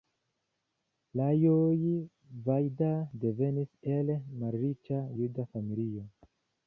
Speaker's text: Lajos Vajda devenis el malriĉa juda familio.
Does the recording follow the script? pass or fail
pass